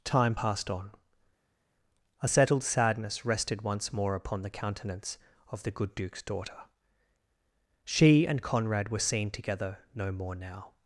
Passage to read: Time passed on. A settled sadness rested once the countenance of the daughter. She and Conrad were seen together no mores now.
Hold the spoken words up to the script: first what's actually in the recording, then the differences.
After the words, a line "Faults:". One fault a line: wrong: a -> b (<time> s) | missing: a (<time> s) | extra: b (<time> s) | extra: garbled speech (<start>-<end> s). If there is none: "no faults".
Time passed on. A settled sadness rested once more upon the countenance of the good Duke's daughter. She and Conrad were seen together no more now.
Faults:
extra: more upon (3.9 s)
extra: good Duke's (5.7 s)
wrong: mores -> more (10.1 s)